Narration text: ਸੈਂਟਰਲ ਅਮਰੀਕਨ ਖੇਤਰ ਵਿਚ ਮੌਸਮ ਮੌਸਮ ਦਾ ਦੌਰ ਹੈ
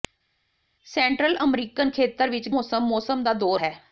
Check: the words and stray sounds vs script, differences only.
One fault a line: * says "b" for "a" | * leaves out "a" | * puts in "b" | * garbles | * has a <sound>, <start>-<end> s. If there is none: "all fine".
all fine